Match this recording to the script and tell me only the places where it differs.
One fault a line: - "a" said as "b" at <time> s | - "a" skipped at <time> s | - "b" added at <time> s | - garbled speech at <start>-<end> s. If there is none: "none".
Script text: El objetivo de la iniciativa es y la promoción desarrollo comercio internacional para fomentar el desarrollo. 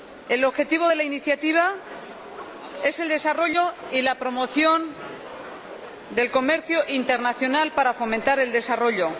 - "el desarrollo" added at 3.0 s
- "desarrollo" said as "del" at 6.1 s